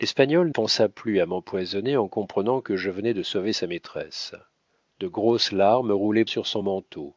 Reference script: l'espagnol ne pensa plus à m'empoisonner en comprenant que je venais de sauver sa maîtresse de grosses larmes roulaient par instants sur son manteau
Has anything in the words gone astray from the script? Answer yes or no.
yes